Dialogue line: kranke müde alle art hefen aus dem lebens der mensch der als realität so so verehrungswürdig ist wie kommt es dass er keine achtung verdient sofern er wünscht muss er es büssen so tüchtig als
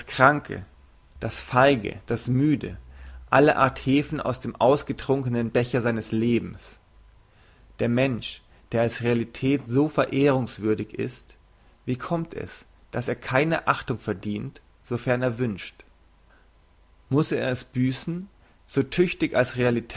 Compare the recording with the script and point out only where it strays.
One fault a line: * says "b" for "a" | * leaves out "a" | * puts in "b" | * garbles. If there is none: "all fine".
* puts in "das feige das"
* puts in "ausgetrunkenen becher seines"
* leaves out "so"